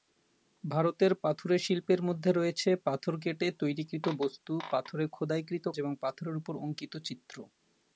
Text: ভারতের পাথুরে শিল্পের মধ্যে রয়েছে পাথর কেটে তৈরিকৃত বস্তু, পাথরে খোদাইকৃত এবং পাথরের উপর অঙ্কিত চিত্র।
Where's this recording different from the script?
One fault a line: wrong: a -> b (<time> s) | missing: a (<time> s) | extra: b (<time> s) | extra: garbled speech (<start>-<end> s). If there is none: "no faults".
no faults